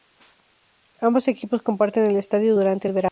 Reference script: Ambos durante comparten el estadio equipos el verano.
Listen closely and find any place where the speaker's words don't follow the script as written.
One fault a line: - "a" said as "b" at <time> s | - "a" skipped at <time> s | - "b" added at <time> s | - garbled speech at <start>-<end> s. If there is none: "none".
- "durante" said as "equipos" at 1.3 s
- "equipos" said as "durante" at 2.5 s